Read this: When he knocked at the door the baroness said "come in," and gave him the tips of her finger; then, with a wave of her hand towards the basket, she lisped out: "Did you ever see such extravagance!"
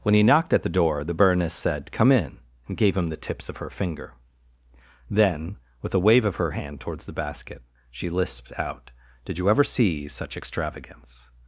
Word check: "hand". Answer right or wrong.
right